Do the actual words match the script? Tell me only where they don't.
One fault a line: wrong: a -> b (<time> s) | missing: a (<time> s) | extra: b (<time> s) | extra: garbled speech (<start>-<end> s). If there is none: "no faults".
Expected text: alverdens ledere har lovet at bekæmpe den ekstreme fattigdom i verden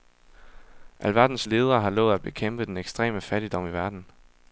no faults